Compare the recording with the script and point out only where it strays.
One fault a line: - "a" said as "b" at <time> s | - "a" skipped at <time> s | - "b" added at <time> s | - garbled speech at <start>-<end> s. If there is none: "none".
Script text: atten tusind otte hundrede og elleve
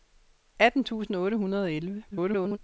- garbled speech at 2.1-2.6 s